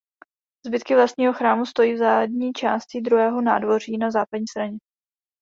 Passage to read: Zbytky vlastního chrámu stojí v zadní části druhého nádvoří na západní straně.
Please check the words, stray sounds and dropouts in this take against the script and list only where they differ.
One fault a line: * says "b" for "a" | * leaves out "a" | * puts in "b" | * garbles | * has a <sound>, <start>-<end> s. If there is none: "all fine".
all fine